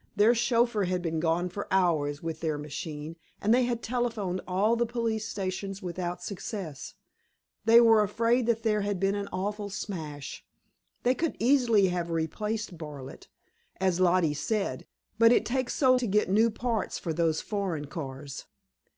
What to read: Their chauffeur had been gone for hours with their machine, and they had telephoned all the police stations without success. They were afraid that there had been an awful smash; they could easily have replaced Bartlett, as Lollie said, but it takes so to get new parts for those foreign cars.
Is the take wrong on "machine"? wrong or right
right